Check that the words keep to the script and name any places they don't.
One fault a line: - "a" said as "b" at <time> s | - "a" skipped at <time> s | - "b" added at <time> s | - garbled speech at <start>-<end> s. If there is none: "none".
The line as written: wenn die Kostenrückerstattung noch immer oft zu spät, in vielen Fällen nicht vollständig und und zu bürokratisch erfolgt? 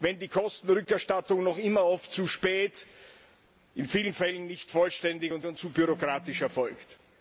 none